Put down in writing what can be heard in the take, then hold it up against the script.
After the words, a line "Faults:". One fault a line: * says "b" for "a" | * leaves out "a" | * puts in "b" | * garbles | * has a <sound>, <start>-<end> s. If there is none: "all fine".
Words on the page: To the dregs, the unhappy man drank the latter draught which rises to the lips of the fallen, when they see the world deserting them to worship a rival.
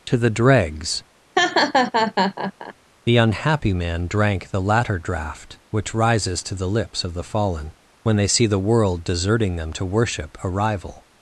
To the dregs, the unhappy man drank the latter draught which rises to the lips of the fallen, when they see the world deserting them to worship a rival.
Faults:
* has a laugh, 1.4-2.7 s